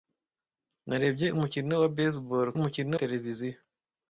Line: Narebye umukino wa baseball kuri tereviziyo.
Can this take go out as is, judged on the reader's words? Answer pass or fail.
fail